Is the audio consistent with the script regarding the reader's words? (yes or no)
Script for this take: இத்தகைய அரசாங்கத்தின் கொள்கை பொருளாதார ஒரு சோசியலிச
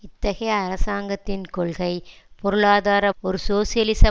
yes